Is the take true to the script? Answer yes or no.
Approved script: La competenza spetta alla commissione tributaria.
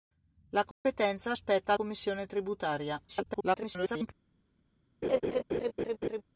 no